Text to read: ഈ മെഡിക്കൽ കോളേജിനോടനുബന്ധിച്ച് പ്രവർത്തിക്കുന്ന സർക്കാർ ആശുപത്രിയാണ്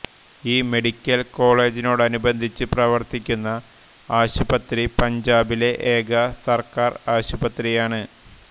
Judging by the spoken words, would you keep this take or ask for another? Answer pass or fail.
fail